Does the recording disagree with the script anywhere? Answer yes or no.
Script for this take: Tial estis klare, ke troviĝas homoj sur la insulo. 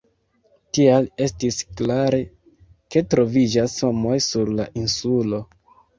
no